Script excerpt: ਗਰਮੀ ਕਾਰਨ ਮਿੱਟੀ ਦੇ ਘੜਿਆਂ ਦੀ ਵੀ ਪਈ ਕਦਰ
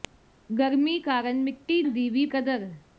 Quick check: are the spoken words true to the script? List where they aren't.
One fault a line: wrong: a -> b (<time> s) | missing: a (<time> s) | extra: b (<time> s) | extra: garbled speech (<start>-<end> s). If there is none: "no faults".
missing: ਦੇ ਘੜਿਆਂ (1.8 s)
missing: ਪਈ (2.2 s)